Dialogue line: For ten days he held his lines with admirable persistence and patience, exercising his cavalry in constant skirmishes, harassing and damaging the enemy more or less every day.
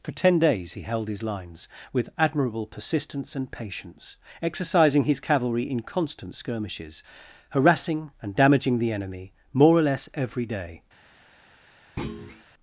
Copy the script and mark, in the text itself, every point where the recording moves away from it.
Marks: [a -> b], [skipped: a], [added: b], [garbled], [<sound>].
For ten days he held his lines with admirable persistence and patience, exercising his cavalry in constant skirmishes, harassing and damaging the enemy more or less every day. [thud]